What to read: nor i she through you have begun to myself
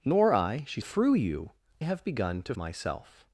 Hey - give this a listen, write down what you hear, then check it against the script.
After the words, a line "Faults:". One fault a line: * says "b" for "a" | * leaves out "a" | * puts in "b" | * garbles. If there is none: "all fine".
nor i she through you have begun to myself
Faults:
all fine